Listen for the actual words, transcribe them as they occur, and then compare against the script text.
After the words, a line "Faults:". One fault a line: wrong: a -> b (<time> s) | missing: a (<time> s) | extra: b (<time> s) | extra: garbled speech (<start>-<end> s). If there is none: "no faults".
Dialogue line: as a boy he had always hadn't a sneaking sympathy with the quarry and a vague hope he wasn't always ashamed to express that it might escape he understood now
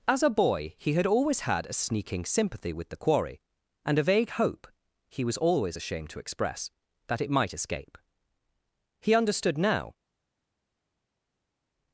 as a boy he had always had a sneaking sympathy with the quarry and a vague hope he was always ashamed to express that it might escape he understood now
Faults:
wrong: hadn't -> had (1.4 s)
wrong: wasn't -> was (5.2 s)